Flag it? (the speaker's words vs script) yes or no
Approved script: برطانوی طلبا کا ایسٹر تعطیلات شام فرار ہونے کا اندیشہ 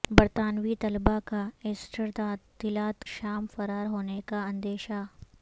no